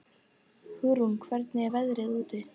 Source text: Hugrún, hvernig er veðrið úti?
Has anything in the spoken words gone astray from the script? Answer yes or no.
no